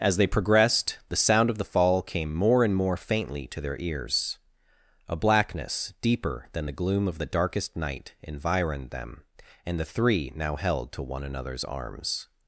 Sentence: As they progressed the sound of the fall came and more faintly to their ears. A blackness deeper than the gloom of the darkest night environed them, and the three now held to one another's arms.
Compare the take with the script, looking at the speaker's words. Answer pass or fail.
fail